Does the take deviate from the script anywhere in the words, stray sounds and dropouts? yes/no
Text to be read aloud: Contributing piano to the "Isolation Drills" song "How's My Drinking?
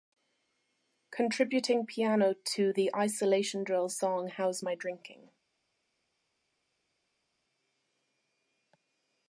no